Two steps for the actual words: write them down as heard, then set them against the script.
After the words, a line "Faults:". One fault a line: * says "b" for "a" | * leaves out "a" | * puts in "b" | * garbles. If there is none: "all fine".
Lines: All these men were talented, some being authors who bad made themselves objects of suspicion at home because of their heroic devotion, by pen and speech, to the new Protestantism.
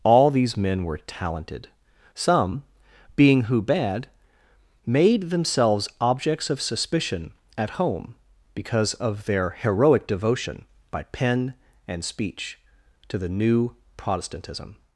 All these men were talented, some being who bad made themselves objects of suspicion at home because of their heroic devotion, by pen and speech, to the new Protestantism.
Faults:
* leaves out "authors"